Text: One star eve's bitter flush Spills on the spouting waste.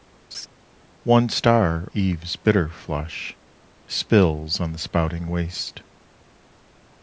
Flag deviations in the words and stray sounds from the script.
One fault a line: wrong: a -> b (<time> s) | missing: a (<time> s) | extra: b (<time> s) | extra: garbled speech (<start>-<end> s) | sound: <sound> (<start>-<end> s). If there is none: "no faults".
sound: laugh (0.3-0.5 s)